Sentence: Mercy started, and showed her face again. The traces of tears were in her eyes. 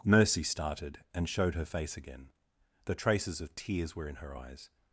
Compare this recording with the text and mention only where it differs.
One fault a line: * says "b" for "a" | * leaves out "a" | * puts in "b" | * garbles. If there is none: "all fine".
all fine